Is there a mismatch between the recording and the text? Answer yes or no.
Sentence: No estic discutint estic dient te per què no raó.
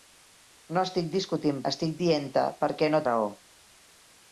no